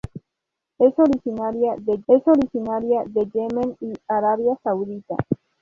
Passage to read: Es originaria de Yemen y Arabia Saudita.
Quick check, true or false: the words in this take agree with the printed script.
false